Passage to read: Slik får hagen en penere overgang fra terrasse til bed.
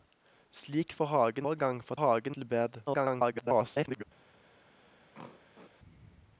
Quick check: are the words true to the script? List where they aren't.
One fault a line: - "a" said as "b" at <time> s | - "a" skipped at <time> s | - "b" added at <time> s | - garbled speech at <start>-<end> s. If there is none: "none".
- "en penere" skipped at 1.5 s
- "terrasse" said as "hagen" at 2.0 s
- garbled speech at 2.9-4.0 s